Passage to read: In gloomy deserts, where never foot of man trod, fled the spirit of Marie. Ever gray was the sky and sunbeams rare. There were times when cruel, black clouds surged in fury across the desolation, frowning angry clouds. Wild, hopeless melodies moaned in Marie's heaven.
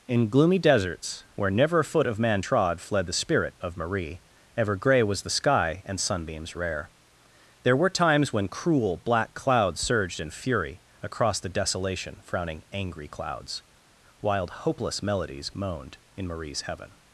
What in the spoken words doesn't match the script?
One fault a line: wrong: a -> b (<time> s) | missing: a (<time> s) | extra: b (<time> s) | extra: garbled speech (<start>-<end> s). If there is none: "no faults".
extra: a (1.8 s)